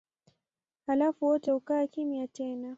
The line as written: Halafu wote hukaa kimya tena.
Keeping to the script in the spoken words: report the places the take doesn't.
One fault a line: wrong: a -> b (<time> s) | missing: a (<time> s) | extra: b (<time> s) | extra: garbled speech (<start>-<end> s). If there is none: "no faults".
no faults